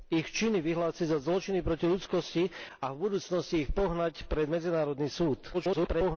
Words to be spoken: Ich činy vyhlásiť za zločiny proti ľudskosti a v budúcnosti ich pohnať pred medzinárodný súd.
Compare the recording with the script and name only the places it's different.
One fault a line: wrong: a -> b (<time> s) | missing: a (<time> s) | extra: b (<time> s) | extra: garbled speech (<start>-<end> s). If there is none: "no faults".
extra: garbled speech (5.5-6.2 s)